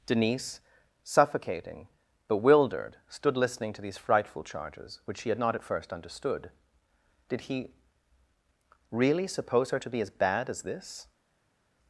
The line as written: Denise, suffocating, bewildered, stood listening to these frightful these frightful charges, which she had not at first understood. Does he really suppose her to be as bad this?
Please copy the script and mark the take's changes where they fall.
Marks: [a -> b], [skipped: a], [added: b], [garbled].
Denise, suffocating, bewildered, stood listening to these frightful [skipped: these frightful] charges, which she had not at first understood. [Does -> Did] he really suppose her to be as bad [added: as] this?